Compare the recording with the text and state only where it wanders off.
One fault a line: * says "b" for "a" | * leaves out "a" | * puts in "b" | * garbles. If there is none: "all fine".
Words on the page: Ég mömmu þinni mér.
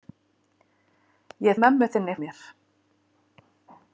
all fine